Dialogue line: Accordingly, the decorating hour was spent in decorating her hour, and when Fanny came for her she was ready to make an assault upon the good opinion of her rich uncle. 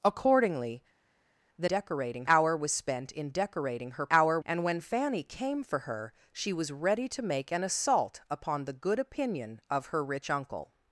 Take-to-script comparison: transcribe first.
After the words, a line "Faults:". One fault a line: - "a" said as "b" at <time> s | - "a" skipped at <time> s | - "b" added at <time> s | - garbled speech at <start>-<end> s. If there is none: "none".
Accordingly, the decorating hour was spent in decorating her hour, and when Fanny came for her she was ready to make an assault upon the good opinion of her rich uncle.
Faults:
none